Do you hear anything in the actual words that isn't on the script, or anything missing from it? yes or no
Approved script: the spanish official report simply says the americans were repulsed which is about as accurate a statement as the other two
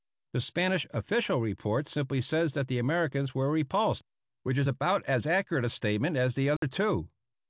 yes